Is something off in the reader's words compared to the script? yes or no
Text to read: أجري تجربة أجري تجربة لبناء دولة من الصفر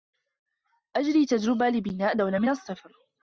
yes